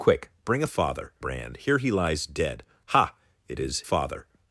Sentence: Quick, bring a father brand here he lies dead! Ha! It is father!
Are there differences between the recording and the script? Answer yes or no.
no